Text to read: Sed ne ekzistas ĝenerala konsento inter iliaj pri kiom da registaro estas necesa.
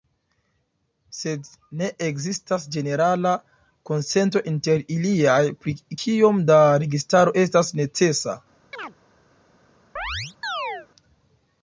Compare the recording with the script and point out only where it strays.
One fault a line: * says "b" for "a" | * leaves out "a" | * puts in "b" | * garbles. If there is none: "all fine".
all fine